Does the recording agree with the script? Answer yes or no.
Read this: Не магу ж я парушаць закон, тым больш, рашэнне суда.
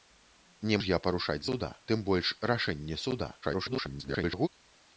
no